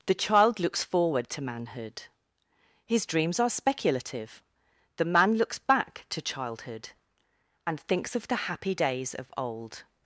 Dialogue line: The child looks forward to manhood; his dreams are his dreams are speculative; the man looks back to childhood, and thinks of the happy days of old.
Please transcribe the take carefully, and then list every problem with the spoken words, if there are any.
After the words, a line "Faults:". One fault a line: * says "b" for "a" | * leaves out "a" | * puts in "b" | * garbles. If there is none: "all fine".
The child looks forward to manhood; his dreams are speculative; the man looks back to childhood, and thinks of the happy days of old.
Faults:
* leaves out "his dreams are"